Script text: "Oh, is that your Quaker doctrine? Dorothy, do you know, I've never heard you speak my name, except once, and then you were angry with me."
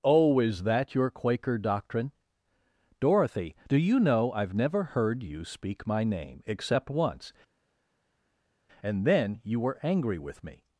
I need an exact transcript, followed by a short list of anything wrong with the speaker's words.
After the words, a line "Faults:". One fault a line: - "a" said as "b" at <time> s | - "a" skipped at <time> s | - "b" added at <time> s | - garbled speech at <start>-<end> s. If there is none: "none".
"Oh, is that your Quaker doctrine? Dorothy, do you know, I've never heard you speak my name, except once, and then you were angry with me."
Faults:
none